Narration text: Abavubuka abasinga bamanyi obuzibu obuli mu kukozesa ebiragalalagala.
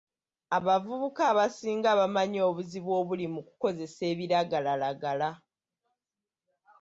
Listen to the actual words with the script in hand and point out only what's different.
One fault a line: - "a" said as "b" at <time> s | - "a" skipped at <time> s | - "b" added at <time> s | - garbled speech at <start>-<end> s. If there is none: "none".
none